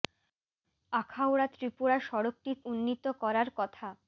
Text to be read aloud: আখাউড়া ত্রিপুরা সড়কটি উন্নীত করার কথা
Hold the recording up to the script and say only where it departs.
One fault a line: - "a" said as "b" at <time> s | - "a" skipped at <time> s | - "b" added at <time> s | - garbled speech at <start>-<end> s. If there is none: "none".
none